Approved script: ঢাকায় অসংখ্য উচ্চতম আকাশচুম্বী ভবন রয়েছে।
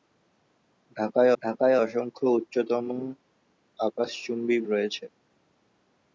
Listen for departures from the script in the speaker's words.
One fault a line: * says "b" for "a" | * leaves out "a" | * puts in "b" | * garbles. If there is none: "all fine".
* puts in "ঢাকায়"
* leaves out "ভবন"